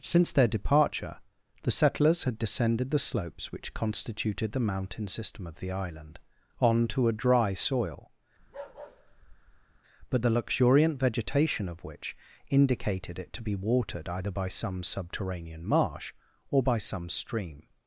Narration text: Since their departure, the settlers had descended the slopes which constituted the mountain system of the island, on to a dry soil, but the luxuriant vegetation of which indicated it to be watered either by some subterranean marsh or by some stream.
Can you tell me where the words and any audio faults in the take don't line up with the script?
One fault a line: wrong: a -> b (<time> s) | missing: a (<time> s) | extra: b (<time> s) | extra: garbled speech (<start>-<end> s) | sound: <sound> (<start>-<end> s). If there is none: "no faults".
sound: bark (8.4-9.8 s)